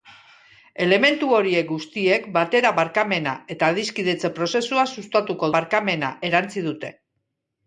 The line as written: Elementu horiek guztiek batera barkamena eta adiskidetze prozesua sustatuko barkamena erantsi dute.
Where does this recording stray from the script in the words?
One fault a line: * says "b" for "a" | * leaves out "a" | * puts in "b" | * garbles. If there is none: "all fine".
all fine